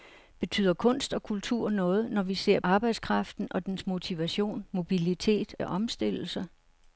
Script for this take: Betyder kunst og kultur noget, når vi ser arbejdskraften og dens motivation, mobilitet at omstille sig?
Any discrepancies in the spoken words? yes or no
no